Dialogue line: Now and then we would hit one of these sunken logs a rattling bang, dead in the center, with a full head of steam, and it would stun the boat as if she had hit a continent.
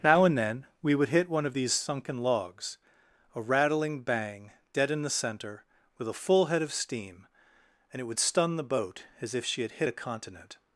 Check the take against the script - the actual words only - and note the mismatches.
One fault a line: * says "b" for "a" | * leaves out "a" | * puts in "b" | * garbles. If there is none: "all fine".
all fine